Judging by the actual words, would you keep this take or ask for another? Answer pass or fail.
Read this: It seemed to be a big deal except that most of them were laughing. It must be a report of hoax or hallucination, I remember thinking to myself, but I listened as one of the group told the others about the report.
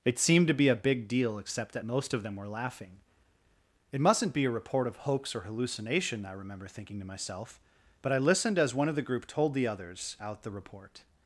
fail